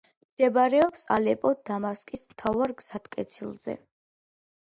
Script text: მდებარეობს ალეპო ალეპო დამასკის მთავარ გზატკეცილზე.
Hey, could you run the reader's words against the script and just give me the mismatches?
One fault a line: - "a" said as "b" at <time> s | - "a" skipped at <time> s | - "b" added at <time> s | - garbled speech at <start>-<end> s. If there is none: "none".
- "ალეპო" skipped at 1.5 s